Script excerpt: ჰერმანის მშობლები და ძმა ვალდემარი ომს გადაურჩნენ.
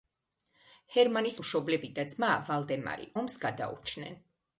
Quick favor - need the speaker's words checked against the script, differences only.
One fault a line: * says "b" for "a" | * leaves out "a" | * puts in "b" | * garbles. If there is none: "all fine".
all fine